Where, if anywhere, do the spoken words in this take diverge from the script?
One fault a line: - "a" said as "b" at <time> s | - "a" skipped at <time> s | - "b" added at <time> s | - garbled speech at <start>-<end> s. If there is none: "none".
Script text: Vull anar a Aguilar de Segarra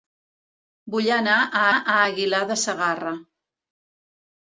- "a" added at 1.7 s